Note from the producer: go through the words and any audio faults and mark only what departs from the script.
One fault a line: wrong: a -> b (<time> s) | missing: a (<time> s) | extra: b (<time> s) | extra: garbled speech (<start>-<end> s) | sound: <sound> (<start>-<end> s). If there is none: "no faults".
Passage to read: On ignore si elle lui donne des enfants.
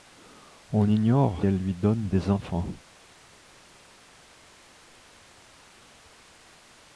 missing: si (1.5 s)